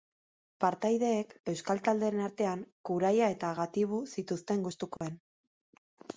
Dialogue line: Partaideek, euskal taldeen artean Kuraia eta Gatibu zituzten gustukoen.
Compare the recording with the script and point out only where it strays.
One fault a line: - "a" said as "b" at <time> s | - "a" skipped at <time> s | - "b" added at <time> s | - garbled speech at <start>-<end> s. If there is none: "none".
none